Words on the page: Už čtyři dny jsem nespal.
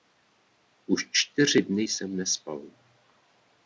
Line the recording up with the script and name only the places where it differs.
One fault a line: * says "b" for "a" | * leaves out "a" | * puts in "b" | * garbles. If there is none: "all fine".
all fine